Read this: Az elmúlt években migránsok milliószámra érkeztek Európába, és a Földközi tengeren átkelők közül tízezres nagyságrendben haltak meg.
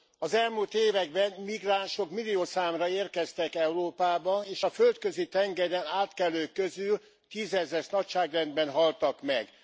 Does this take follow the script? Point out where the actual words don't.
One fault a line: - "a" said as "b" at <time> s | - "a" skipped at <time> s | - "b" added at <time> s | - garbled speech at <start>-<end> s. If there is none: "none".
none